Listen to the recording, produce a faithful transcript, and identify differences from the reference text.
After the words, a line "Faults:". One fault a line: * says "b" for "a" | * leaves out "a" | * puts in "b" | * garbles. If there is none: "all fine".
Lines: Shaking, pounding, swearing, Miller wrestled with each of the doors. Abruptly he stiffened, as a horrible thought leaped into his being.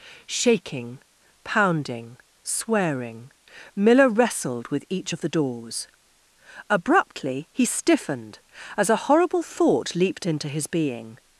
Shaking, pounding, swearing, Miller wrestled with each of the doors. Abruptly he stiffened, as a horrible thought leaped into his being.
Faults:
all fine